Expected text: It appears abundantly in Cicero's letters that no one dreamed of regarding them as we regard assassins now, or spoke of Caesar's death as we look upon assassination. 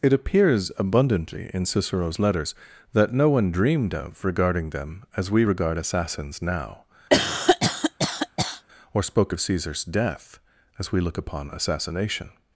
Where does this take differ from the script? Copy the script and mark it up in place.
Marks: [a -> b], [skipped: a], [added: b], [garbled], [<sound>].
It appears abundantly in Cicero's letters that no one dreamed of regarding them as we regard assassins now, [cough] or spoke of Caesar's death as we look upon assassination.